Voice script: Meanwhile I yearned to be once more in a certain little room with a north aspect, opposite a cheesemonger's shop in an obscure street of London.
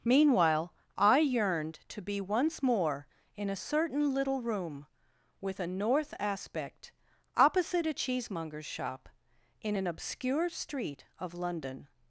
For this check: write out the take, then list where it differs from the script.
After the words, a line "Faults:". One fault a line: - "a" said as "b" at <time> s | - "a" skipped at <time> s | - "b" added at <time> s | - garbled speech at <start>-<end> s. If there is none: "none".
Meanwhile I yearned to be once more in a certain little room with a north aspect, opposite a cheesemonger's shop in an obscure street of London.
Faults:
none